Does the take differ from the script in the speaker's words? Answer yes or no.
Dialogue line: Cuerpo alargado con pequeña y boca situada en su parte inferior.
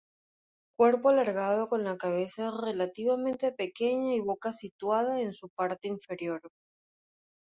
yes